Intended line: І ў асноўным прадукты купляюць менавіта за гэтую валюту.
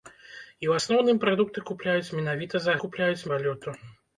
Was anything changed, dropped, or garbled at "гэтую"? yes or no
yes